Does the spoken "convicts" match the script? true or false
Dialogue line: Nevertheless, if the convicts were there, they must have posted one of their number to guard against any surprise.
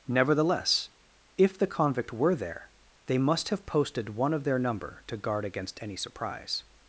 false